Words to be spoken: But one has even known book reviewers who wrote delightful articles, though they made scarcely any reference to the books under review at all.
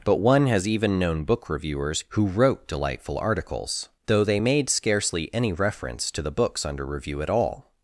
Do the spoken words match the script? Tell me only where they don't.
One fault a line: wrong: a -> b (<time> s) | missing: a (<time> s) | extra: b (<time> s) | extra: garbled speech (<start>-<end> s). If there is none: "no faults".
no faults